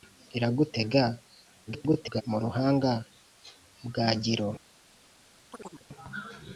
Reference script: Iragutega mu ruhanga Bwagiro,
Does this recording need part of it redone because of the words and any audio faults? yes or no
yes